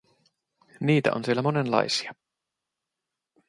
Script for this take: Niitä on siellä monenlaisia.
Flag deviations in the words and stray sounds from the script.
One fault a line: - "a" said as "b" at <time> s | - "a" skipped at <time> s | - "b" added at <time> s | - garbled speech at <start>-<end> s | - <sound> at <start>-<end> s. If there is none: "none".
none